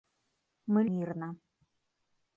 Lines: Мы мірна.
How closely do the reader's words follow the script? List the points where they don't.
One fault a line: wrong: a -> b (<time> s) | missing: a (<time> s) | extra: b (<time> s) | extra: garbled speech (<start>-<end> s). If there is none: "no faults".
no faults